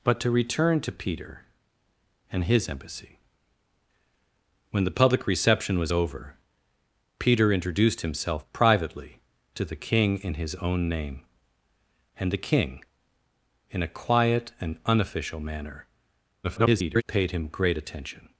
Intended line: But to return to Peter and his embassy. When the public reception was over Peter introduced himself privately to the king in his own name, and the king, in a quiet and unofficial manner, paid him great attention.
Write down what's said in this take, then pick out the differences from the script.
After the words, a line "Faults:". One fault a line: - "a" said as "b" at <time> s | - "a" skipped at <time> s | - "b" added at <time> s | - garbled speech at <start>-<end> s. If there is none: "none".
But to return to Peter and his embassy. When the public reception was over Peter introduced himself privately to the king in his own name, and the king, in a quiet and unofficial manner, [garbled] paid him great attention.
Faults:
- garbled speech at 16.4-17.0 s